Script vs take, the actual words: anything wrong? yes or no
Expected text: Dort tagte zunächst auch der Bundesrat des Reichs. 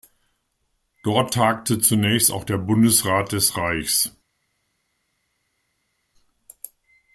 no